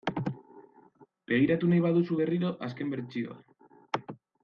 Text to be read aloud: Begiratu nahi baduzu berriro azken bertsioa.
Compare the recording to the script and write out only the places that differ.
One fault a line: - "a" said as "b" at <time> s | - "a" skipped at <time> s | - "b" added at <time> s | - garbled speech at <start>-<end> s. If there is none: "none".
none